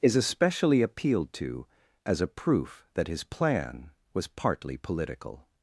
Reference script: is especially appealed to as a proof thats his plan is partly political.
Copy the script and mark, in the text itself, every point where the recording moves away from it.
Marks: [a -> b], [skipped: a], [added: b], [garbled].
is especially appealed to as a proof [thats -> that] his plan [is -> was] partly political.